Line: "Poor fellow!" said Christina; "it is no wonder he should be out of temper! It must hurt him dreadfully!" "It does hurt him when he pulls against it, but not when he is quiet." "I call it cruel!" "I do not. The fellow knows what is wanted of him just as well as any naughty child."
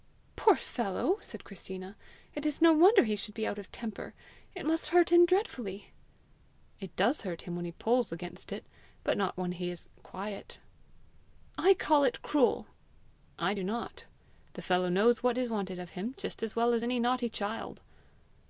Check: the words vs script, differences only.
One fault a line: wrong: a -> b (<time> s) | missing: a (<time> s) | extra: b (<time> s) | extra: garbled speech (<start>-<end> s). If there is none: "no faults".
no faults